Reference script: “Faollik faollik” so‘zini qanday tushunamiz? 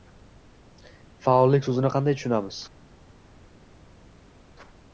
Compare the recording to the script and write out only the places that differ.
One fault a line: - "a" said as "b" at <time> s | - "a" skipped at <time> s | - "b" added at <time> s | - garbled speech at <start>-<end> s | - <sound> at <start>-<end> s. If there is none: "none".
- "faollik" skipped at 1.7 s